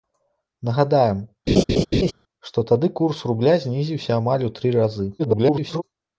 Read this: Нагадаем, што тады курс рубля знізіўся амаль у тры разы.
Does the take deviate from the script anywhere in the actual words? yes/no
yes